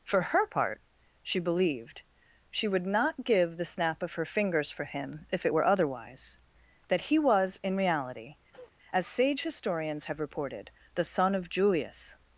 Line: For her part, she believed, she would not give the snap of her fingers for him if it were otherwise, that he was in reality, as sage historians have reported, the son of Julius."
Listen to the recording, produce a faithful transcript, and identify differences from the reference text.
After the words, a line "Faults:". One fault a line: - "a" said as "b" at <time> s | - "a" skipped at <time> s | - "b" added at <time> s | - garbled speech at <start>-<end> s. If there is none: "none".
For her part, she believed, she would not give the snap of her fingers for him if it were otherwise, that he was in reality, as sage historians have reported, the son of Julius."
Faults:
none